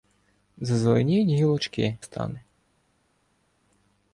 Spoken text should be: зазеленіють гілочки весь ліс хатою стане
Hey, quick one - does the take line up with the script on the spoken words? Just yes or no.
no